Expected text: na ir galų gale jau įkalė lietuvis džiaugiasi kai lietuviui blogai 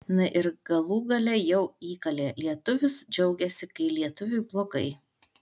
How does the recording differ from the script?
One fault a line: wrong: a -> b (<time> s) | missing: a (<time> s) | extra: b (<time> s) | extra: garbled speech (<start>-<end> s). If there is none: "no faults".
no faults